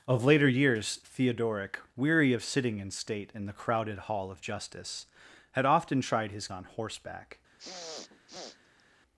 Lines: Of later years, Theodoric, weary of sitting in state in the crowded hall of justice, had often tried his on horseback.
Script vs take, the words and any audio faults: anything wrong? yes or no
yes